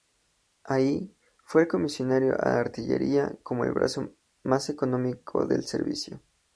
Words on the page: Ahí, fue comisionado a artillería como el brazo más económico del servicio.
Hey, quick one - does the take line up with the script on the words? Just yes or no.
yes